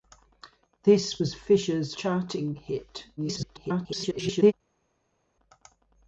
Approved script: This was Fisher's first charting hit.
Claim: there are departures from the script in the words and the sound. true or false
true